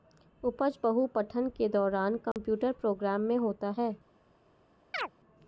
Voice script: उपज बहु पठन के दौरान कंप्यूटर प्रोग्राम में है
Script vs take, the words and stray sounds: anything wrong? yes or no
yes